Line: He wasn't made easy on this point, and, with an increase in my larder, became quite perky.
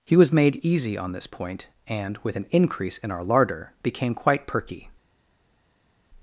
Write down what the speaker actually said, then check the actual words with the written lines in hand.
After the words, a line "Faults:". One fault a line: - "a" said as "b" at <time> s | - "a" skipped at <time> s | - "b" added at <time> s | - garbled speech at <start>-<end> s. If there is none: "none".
He was made easy on this point, and, with an increase in our larder, became quite perky.
Faults:
- "wasn't" said as "was" at 0.1 s
- "my" said as "our" at 3.1 s